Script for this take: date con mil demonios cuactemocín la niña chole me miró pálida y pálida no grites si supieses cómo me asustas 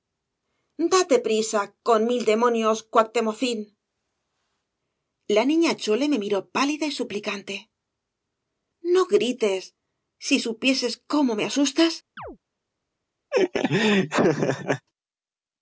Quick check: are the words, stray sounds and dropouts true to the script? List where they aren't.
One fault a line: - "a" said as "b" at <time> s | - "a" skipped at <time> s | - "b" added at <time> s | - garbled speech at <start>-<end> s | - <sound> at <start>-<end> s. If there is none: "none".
- "prisa" added at 1.3 s
- "pálida" said as "suplicante" at 7.0 s
- chirp at 12.2-12.4 s
- laugh at 13.3-14.9 s